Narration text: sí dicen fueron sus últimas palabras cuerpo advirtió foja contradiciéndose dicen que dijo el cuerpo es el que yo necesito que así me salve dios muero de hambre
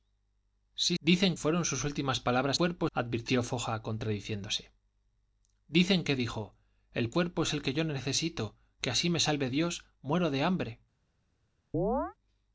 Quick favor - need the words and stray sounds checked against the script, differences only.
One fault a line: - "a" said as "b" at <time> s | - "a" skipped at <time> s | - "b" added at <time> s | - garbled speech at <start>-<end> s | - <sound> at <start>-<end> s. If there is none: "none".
- chirp at 11.7-12.1 s